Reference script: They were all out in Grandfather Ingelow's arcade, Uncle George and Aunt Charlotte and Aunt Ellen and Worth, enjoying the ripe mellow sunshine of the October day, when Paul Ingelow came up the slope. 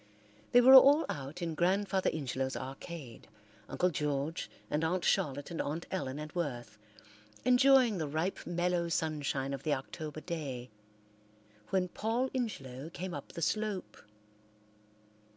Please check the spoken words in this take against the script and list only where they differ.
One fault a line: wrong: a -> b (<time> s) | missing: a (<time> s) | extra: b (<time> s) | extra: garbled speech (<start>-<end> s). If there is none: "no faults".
no faults